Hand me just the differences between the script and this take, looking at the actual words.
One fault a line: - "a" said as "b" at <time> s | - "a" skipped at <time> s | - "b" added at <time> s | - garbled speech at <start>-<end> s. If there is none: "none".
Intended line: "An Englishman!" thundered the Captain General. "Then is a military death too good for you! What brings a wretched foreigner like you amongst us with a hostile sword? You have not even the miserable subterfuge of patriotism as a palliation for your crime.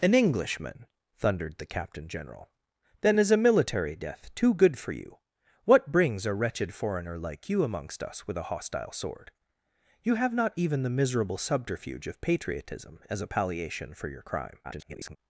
- garbled speech at 14.6-15.2 s